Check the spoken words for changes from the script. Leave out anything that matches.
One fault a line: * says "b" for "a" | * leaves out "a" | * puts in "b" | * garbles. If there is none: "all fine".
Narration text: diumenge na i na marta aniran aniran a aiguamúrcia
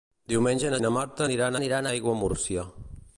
all fine